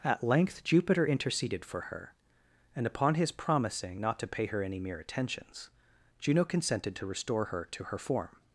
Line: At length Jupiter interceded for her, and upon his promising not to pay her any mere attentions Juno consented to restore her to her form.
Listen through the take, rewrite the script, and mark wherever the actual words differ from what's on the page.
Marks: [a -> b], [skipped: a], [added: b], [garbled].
At length Jupiter interceded for her, and upon his promising not to pay her any mere attentions Juno consented to restore her to her form.